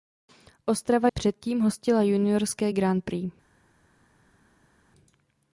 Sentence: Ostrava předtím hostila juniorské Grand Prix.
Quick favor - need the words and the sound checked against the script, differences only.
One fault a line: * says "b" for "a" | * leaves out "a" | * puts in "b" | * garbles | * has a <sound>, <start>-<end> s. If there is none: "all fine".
all fine